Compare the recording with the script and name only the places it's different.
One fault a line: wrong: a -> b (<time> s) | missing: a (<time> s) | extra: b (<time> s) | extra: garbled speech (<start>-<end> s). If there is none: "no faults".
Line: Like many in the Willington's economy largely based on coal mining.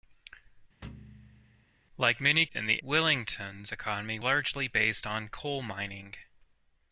no faults